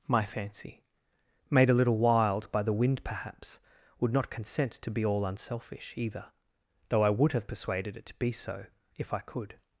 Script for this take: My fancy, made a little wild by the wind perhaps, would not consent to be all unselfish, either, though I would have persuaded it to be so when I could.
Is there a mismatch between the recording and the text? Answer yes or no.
yes